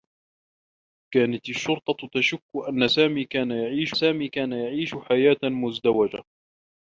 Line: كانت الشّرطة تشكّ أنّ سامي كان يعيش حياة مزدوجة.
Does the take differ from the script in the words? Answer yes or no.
yes